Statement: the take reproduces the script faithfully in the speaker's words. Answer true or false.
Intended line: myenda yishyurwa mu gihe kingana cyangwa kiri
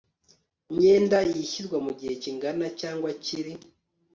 true